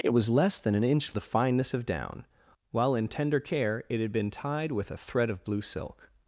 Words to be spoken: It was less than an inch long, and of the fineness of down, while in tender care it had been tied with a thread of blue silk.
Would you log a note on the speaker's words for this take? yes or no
yes